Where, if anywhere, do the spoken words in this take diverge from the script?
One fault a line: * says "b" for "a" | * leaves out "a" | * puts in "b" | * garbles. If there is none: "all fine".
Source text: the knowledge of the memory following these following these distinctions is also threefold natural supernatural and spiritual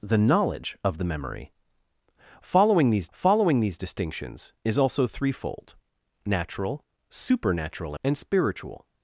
all fine